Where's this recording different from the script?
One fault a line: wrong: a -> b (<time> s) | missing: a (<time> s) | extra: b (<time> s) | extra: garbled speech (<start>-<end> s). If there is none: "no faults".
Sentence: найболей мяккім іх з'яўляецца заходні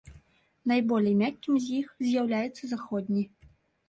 extra: з (1.6 s)